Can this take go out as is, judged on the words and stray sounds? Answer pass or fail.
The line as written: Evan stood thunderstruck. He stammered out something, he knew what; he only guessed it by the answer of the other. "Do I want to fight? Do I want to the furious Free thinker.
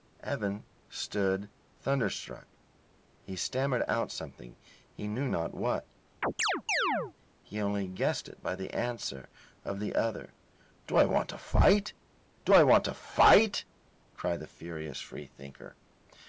fail